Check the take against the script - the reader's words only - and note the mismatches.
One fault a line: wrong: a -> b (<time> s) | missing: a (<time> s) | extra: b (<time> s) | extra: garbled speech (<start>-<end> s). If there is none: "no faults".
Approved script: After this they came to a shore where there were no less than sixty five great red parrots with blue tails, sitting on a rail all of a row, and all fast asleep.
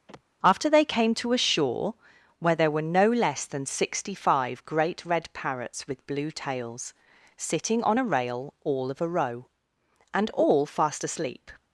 missing: this (0.7 s)